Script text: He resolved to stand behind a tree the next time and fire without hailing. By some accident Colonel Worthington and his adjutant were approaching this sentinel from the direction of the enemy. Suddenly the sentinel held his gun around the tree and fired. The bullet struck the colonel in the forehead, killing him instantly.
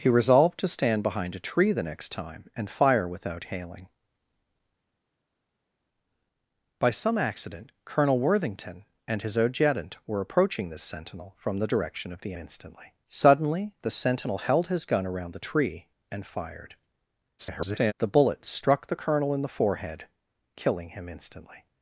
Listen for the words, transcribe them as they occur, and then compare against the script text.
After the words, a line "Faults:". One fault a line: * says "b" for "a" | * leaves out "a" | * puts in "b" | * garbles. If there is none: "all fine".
He resolved to stand behind a tree the next time and fire without hailing. By some accident Colonel Worthington and his adjutant were approaching this sentinel from the direction of the instantly. Suddenly the sentinel held his gun around the tree and fired. [garbled] The bullet struck the colonel in the forehead, killing him instantly.
Faults:
* says "instantly" for "enemy"
* garbles